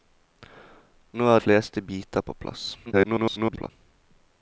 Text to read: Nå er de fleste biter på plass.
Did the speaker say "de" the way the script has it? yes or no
no